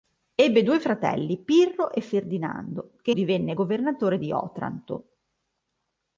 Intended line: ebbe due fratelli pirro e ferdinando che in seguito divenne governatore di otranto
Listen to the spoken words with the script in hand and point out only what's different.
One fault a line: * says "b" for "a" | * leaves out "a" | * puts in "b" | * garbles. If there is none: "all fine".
* leaves out "in seguito"